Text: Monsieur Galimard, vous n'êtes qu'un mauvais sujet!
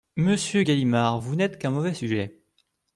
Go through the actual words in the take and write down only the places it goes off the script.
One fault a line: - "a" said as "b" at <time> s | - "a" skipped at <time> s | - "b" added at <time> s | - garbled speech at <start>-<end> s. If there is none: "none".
none